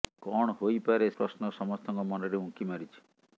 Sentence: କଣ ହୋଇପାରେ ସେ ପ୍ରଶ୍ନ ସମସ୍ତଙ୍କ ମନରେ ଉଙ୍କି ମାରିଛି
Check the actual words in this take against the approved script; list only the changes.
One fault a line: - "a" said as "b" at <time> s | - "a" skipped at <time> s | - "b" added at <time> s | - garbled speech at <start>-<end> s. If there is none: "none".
- "ସେ" skipped at 1.1 s